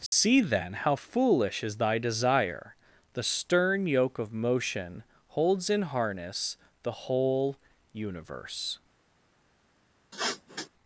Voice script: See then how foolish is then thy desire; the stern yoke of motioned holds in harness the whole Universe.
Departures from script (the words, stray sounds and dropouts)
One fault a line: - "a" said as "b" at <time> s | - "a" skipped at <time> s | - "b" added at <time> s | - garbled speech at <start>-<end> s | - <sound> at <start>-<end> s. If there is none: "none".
- dropout at 0.1-0.1 s
- "then" skipped at 1.8 s
- "motioned" said as "motion" at 4.3 s
- sniff at 10.1-10.7 s